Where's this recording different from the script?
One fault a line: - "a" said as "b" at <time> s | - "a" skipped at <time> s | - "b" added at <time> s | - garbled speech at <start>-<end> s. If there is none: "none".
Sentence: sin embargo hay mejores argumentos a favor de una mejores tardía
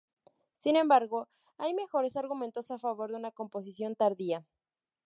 - "mejores" said as "composición" at 3.3 s